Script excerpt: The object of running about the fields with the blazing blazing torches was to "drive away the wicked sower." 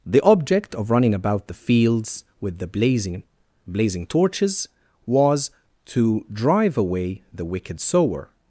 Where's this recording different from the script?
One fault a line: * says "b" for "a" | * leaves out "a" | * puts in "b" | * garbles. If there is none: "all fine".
all fine